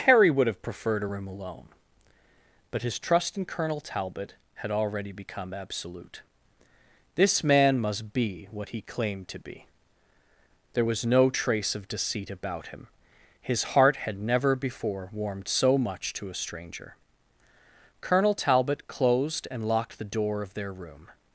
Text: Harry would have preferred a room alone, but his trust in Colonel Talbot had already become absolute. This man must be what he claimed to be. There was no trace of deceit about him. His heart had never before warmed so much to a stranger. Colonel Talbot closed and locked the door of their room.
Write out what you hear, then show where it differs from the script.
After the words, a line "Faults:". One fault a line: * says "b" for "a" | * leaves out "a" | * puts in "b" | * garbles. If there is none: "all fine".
Harry would have preferred a room alone, but his trust in Colonel Talbot had already become absolute. This man must be what he claimed to be. There was no trace of deceit about him. His heart had never before warmed so much to a stranger. Colonel Talbot closed and locked the door of their room.
Faults:
all fine